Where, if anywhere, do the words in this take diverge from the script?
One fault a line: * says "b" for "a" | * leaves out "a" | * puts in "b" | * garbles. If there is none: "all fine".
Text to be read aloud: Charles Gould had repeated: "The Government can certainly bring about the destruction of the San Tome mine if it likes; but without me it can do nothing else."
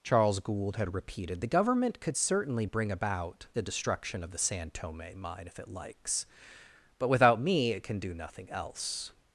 * says "could" for "can"